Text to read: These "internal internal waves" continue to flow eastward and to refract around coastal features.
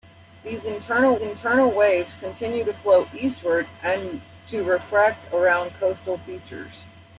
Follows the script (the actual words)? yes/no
yes